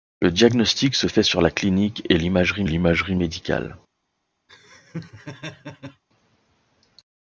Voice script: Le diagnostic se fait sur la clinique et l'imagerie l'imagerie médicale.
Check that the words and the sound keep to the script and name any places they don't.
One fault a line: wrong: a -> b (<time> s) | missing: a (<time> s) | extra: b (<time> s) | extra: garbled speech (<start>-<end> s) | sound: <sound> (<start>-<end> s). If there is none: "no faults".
sound: laugh (4.5-6.0 s)